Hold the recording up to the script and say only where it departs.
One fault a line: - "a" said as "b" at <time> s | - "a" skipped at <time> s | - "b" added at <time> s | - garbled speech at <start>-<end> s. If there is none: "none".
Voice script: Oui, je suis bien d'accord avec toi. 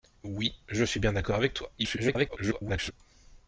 - garbled speech at 1.8-2.9 s